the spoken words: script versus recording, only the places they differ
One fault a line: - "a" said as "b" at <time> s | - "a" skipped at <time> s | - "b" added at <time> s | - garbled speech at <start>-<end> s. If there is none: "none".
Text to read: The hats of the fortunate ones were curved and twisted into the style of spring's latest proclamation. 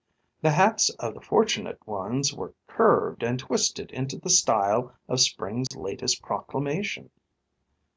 none